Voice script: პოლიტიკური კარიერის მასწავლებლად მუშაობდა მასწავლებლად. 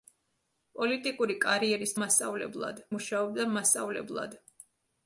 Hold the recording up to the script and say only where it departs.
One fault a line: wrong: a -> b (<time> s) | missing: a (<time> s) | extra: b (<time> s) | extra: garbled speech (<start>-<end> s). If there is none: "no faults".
no faults